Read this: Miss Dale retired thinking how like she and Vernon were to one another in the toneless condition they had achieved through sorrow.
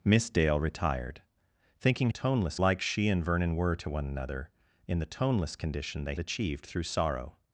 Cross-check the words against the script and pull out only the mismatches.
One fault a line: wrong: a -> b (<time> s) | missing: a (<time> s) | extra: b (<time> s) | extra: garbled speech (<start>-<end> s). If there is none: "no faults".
wrong: how -> toneless (2.1 s)
missing: had (6.1 s)